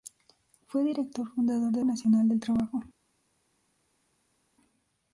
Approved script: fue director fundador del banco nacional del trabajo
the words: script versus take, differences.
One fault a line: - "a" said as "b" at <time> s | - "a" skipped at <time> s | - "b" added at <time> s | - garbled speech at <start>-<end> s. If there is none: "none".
- "banco" skipped at 1.9 s